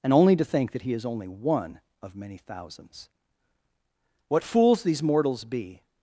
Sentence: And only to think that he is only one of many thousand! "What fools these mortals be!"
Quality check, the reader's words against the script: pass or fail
fail